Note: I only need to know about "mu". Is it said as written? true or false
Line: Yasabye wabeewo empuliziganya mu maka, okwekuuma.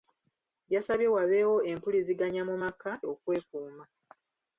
true